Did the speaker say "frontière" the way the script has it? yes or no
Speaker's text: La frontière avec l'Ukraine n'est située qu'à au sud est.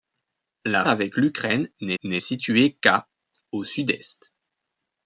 no